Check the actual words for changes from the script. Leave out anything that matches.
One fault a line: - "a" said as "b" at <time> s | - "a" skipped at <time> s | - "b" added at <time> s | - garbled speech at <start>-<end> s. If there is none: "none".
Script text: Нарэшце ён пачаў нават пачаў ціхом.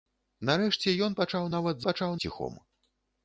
none